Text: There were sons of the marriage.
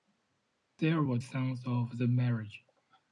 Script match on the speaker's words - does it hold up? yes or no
yes